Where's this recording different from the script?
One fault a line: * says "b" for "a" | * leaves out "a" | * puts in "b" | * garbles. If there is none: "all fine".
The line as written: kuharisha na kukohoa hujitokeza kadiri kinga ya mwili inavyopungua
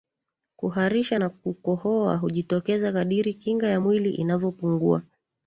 all fine